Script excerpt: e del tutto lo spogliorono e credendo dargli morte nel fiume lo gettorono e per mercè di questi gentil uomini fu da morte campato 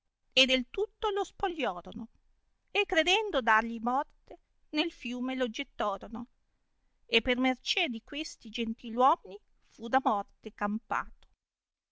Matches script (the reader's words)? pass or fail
pass